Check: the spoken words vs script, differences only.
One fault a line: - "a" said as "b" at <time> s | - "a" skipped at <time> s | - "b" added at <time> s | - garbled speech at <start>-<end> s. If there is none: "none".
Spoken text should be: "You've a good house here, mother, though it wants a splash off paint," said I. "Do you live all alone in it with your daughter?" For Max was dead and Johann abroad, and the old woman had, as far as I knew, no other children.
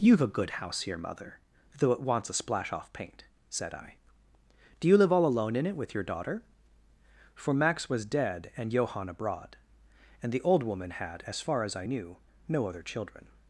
none